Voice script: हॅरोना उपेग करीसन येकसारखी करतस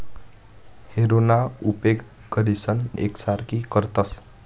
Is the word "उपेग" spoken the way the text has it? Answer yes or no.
yes